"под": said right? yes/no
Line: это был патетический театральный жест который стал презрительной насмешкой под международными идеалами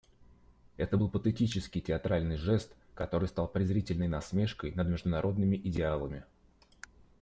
no